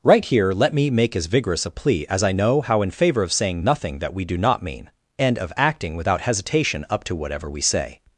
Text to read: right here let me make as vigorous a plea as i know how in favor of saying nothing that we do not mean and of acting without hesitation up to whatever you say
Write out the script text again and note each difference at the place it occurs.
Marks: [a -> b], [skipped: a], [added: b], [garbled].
right here let me make as vigorous a plea as i know how in favor of saying nothing that we do not mean and of acting without hesitation up to whatever [you -> we] say